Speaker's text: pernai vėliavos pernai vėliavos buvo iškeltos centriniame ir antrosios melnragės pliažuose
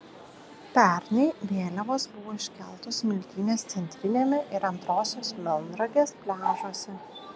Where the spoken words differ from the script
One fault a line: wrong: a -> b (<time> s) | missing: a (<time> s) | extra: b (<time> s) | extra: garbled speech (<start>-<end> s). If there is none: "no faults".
missing: pernai vėliavos (2.1 s)
extra: smiltynės (3.0 s)